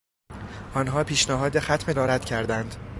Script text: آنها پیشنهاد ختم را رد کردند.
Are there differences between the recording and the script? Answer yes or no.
no